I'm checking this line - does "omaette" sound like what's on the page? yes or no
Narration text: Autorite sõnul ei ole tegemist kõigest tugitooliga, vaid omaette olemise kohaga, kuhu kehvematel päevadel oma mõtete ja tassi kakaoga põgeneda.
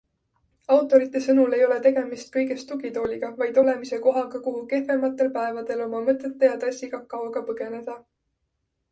no